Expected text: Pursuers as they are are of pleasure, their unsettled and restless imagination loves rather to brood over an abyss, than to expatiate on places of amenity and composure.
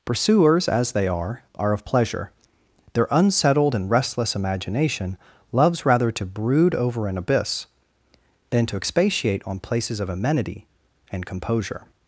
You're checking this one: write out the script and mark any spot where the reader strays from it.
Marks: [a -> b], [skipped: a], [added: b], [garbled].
Pursuers as they are are of pleasure, their unsettled and restless imagination loves rather to brood over an abyss, than to expatiate on places of amenity and composure.